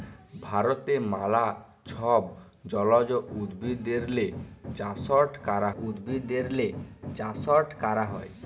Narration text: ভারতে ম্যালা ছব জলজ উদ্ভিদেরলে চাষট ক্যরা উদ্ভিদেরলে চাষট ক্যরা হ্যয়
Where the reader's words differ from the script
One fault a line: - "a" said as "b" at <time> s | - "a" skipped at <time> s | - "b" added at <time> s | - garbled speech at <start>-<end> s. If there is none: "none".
none